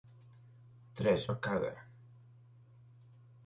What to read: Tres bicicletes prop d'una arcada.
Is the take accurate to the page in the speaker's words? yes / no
no